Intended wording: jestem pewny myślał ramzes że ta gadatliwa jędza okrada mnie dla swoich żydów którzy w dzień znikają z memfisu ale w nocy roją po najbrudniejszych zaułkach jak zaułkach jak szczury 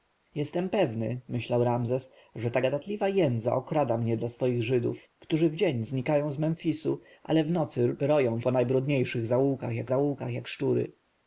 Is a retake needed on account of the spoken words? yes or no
no